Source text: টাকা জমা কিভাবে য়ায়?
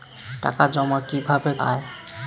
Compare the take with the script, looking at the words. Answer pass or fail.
pass